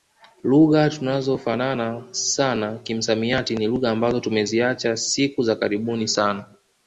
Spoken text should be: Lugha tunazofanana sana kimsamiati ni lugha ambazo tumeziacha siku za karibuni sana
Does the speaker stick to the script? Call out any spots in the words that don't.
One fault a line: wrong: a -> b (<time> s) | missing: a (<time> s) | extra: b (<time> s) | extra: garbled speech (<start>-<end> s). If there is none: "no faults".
no faults